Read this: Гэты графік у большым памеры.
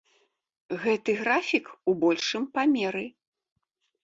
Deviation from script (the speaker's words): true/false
false